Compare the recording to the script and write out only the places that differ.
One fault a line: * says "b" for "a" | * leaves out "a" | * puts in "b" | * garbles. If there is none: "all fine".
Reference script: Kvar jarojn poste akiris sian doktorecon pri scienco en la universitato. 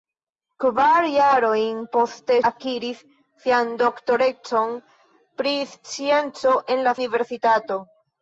all fine